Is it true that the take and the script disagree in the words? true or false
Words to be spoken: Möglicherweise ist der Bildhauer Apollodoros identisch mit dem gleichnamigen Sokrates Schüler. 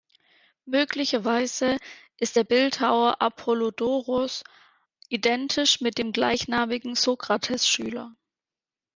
false